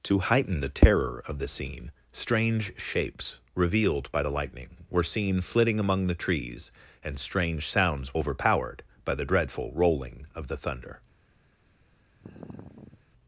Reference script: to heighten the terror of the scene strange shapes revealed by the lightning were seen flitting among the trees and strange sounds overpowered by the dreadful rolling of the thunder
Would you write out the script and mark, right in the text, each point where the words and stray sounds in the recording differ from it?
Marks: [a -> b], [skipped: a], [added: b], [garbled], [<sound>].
to heighten the terror of the scene strange shapes revealed by the lightning were seen flitting among the trees and strange sounds overpowered by the dreadful rolling of the thunder [sigh]